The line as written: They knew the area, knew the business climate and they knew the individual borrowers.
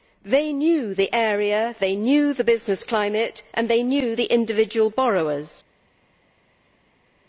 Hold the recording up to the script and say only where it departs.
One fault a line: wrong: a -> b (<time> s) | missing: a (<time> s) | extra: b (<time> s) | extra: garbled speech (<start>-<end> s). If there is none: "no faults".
extra: they (1.8 s)